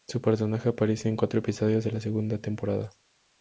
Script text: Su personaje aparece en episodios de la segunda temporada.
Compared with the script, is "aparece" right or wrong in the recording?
right